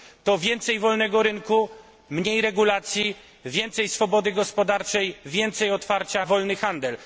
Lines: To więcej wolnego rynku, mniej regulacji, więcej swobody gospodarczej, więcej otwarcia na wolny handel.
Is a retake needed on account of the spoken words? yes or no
yes